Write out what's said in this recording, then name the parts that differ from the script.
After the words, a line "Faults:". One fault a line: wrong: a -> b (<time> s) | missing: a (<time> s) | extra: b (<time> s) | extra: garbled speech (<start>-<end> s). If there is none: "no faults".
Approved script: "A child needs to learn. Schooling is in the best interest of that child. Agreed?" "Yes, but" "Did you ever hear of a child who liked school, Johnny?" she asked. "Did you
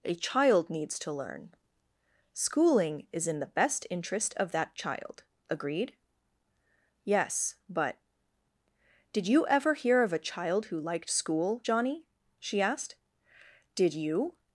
"A child needs to learn. Schooling is in the best interest of that child. Agreed?" "Yes, but" "Did you ever hear of a child who liked school, Johnny?" she asked. "Did you
Faults:
no faults